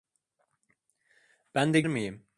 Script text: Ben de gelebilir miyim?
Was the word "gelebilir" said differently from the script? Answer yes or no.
yes